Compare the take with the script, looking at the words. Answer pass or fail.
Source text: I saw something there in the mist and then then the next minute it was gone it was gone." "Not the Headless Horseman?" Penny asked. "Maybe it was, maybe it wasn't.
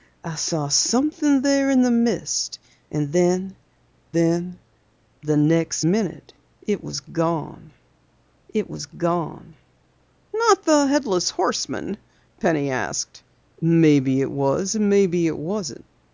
pass